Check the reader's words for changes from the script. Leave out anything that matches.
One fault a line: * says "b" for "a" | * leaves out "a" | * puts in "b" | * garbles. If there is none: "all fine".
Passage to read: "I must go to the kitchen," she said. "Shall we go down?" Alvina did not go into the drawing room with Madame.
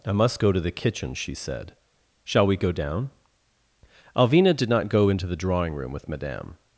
all fine